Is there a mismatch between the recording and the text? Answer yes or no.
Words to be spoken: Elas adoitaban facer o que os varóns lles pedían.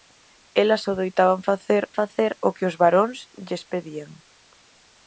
yes